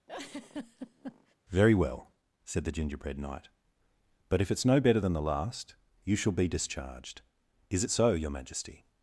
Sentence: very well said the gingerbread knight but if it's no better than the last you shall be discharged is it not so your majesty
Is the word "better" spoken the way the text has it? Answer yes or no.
yes